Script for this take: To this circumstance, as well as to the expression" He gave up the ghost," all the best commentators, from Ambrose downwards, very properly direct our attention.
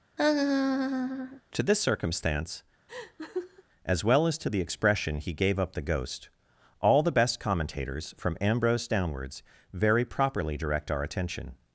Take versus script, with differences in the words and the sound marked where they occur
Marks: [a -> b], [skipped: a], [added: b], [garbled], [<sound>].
[laugh] To this circumstance, [laugh] as well as to the expression" He gave up the ghost," all the best commentators, from Ambrose downwards, very properly direct our attention.